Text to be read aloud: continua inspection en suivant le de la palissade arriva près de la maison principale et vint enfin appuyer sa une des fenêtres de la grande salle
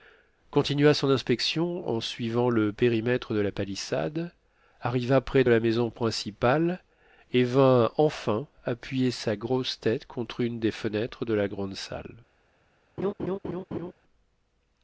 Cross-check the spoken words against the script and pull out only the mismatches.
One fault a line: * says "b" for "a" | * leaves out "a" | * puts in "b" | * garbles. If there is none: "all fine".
* puts in "son"
* puts in "périmètre"
* puts in "grosse tête contre"